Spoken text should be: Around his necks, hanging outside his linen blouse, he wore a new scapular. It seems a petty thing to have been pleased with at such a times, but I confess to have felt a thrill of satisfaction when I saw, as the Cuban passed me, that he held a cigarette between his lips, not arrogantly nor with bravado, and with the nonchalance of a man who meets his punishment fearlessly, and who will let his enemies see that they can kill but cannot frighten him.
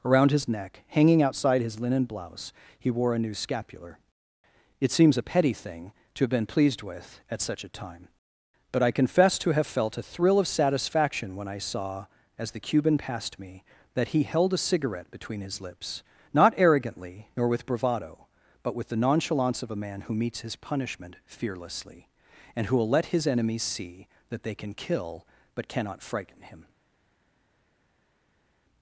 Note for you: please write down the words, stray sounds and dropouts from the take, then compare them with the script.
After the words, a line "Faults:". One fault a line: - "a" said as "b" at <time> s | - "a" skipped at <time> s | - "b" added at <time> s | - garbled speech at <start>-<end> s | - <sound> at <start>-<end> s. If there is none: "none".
Around his neck, hanging outside his linen blouse, he wore a new scapular. It seems a petty thing to have been pleased with at such a time, but I confess to have felt a thrill of satisfaction when I saw, as the Cuban passed me, that he held a cigarette between his lips, not arrogantly nor with bravado, but with the nonchalance of a man who meets his punishment fearlessly, and who will let his enemies see that they can kill but cannot frighten him.
Faults:
- "necks" said as "neck" at 0.5 s
- "times" said as "time" at 7.7 s
- "and" said as "but" at 18.6 s